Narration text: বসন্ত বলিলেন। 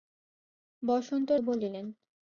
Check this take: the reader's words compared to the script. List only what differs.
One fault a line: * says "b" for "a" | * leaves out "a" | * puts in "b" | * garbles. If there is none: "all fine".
all fine